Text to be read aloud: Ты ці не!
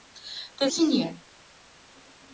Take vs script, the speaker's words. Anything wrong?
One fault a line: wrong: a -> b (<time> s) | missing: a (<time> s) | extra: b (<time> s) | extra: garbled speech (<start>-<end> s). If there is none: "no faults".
no faults